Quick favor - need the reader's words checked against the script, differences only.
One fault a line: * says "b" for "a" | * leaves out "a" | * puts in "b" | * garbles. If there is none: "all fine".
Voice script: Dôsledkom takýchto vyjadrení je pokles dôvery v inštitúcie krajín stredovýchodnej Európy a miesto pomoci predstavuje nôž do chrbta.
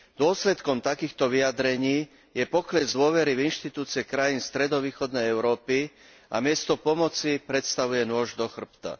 all fine